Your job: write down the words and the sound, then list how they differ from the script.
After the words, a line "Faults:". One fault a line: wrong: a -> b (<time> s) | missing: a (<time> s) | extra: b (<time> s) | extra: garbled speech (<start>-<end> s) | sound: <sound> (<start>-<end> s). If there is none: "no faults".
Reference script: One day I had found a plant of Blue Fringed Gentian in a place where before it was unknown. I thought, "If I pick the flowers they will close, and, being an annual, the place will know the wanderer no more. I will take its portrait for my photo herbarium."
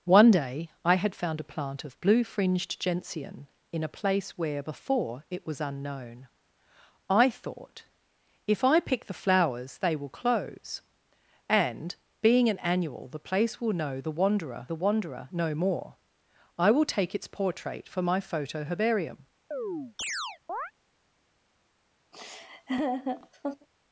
One day I had found a plant of Blue Fringed Gentian in a place where before it was unknown. I thought, "If I pick the flowers they will close, and, being an annual, the place will know the wanderer the wanderer no more. I will take its portrait for my photo herbarium."
Faults:
extra: the wanderer (14.7 s)
sound: chirp (19.5-20.7 s)
sound: laugh (22.1-23.7 s)